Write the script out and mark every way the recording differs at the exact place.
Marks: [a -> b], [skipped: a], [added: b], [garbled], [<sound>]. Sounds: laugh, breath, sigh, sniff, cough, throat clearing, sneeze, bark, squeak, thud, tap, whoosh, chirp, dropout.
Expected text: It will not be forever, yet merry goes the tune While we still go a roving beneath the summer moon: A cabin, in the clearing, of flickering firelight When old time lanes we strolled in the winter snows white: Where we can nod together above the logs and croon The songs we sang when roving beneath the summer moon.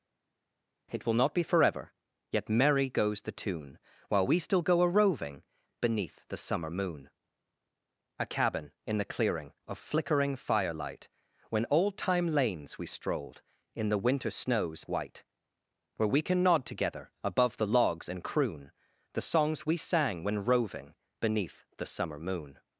It will not be forever, yet merry goes the tune While we still go a roving beneath the summer moon: A cabin, in the clearing, of flickering firelight When old time lanes we strolled in the winter snows white: Where we can nod together above the logs and croon The songs we sang when roving beneath the summer moon.